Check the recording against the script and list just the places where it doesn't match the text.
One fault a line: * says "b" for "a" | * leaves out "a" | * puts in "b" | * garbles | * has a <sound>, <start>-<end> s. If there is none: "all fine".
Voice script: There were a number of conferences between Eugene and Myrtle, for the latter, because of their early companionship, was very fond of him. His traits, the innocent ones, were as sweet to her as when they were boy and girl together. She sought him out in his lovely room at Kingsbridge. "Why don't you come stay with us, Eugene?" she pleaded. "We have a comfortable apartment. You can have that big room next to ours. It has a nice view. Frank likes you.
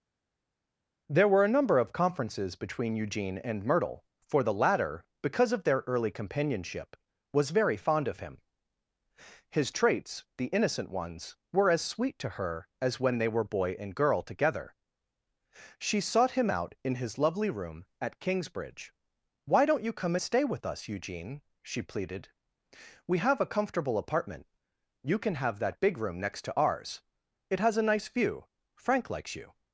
all fine